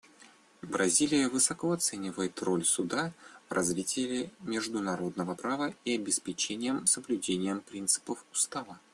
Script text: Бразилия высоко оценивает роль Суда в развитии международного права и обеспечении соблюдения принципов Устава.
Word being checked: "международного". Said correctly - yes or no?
yes